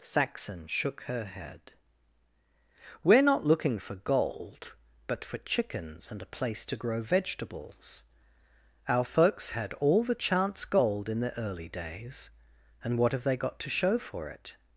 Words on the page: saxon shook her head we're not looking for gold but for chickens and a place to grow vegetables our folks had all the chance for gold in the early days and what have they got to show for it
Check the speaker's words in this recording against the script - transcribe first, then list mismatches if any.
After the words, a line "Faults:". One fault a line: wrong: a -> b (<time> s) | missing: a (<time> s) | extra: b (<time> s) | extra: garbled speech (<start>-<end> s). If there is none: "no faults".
saxon shook her head we're not looking for gold but for chickens and a place to grow vegetables our folks had all the chance gold in the early days and what have they got to show for it
Faults:
missing: for (10.7 s)